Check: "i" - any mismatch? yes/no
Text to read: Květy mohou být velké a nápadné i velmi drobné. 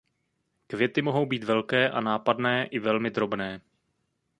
no